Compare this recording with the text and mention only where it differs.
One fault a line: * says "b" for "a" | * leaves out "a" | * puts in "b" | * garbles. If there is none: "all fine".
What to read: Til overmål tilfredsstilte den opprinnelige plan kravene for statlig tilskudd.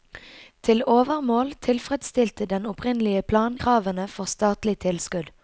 all fine